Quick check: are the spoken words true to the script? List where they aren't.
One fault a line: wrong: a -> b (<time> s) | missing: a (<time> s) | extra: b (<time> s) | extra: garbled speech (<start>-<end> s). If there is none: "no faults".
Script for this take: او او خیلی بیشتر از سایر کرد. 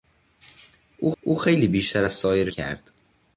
no faults